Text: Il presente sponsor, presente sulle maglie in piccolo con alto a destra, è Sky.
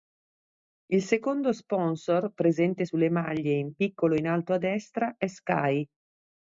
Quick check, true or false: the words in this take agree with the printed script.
false